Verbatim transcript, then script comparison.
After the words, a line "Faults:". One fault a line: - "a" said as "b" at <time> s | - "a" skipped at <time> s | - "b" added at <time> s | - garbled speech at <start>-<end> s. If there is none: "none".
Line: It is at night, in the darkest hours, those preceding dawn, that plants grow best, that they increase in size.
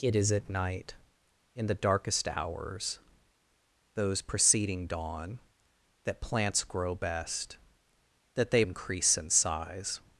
It is at night, in the darkest hours, those preceding dawn, that plants grow best, that they increase in size.
Faults:
none